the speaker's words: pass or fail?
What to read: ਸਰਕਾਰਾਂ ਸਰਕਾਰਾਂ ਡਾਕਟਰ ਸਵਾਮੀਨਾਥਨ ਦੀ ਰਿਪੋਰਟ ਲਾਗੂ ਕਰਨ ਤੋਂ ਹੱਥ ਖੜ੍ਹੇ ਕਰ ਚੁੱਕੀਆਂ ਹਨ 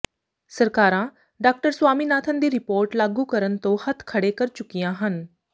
fail